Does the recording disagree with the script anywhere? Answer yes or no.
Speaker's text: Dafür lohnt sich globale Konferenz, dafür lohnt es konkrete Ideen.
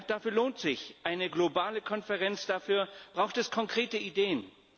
yes